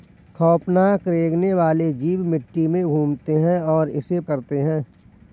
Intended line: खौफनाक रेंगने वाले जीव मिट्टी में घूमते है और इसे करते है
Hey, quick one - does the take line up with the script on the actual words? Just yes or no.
yes